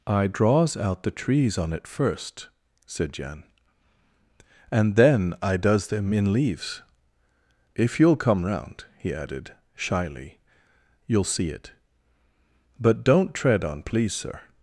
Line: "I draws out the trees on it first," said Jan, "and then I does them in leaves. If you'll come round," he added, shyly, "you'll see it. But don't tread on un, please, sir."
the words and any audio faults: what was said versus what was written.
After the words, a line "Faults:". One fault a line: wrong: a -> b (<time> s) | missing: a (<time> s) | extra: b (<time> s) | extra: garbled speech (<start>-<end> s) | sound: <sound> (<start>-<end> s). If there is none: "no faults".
"I draws out the trees on it first," said Jan, "and then I does them in leaves. If you'll come round," he added, shyly, "you'll see it. But don't tread on please, sir."
Faults:
missing: un (13.8 s)